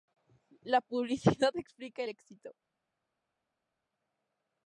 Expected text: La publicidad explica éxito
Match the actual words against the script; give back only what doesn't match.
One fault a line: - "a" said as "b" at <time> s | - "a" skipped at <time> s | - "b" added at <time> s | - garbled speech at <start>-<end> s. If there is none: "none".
none